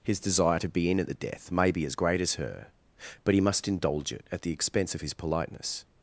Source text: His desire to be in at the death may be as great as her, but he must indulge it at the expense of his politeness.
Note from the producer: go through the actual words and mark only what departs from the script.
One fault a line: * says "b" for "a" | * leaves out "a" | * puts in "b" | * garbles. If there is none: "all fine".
all fine